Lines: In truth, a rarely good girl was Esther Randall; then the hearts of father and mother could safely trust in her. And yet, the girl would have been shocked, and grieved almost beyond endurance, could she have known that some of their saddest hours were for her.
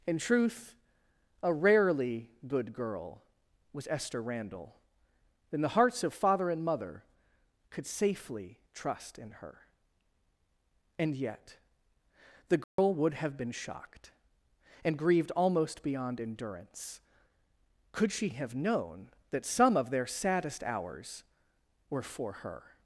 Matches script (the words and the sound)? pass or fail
fail